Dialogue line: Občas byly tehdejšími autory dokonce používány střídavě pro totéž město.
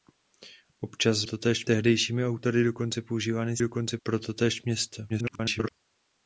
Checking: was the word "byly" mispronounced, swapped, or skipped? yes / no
yes